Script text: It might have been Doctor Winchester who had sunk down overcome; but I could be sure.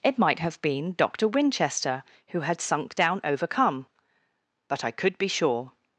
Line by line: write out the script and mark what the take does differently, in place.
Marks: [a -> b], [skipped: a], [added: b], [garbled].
It might have been Doctor Winchester who had sunk down overcome; but I could be sure.